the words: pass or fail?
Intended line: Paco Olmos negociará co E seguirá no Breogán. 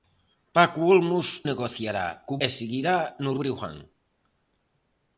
pass